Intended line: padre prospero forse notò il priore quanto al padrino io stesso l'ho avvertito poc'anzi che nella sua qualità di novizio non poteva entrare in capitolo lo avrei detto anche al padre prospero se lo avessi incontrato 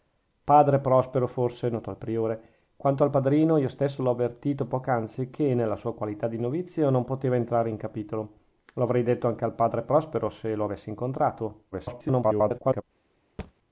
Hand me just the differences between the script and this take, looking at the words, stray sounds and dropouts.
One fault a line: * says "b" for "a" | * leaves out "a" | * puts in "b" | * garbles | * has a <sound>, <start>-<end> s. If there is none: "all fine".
* garbles
* has a thud, 13.4-13.5 s